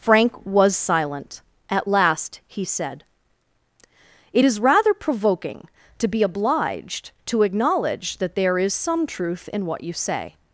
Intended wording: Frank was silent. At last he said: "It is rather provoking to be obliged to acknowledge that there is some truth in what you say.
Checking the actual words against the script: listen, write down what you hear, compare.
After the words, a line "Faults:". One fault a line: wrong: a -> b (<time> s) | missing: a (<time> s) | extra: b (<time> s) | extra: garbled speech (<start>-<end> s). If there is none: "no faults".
Frank was silent. At last he said: "It is rather provoking to be obliged to acknowledge that there is some truth in what you say.
Faults:
no faults